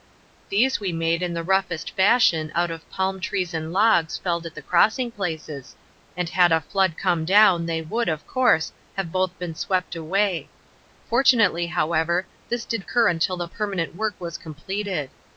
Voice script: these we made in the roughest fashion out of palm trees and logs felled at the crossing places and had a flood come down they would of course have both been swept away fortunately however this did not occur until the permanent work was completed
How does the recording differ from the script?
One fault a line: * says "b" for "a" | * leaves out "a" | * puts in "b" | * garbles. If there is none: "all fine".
* leaves out "not"